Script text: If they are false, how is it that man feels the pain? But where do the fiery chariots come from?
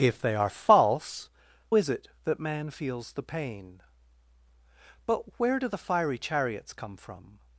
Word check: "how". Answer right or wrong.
wrong